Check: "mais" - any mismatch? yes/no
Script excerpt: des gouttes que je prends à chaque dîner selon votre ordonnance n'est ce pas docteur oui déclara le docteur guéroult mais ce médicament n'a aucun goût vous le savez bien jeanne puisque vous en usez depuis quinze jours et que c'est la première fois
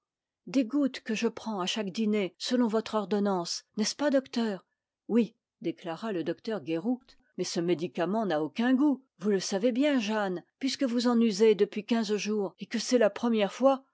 no